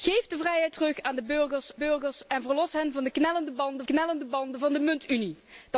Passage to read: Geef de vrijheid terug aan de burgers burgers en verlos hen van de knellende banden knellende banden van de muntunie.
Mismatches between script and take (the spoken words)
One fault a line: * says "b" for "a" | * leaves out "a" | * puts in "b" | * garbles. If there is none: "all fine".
all fine